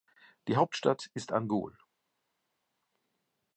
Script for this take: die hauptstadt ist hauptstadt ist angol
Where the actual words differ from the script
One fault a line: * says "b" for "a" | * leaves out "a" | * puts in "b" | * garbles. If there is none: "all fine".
* leaves out "hauptstadt ist"